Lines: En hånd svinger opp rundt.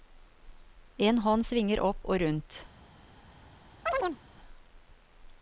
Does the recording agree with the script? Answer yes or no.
no